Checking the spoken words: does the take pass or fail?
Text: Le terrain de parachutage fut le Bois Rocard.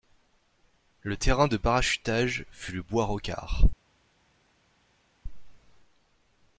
pass